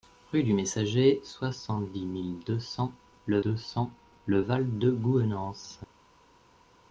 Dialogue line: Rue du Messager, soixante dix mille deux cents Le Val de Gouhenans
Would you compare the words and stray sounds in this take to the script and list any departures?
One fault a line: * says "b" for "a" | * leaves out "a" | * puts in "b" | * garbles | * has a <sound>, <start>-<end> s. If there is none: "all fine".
* puts in "deux cents Le"